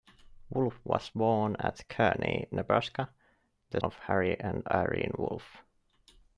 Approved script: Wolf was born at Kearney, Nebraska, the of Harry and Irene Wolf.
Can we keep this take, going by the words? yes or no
yes